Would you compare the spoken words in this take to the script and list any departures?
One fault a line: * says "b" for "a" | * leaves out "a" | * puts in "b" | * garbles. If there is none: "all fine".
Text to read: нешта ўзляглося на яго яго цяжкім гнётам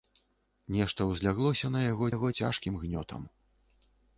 all fine